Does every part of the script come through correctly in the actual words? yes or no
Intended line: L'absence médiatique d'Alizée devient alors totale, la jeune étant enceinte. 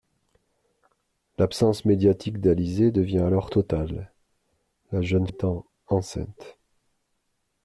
yes